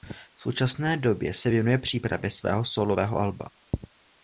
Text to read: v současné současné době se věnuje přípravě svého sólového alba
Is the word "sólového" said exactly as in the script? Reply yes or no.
yes